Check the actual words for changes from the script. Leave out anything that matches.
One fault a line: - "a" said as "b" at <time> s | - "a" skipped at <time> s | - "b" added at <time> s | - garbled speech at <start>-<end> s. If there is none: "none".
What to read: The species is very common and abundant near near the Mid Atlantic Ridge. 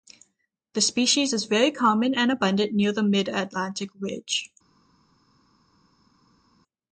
- "near" skipped at 2.9 s